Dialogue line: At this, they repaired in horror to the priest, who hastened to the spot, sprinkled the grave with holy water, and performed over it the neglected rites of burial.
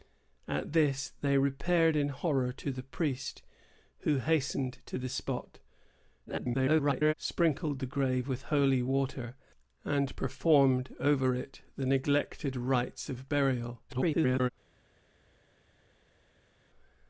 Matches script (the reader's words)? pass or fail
fail